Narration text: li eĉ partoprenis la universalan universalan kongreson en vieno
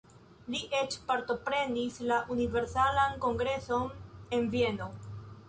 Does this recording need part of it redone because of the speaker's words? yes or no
yes